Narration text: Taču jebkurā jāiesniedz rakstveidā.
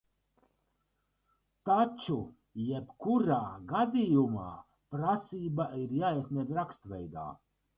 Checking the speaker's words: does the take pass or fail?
fail